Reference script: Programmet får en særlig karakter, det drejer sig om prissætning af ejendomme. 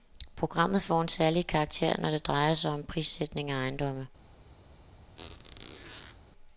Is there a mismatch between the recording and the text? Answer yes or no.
yes